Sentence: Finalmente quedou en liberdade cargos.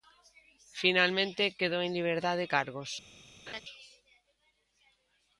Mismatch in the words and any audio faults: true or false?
true